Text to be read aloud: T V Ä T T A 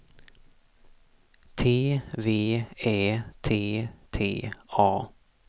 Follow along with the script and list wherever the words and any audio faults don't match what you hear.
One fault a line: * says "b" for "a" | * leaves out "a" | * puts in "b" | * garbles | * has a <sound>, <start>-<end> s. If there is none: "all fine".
all fine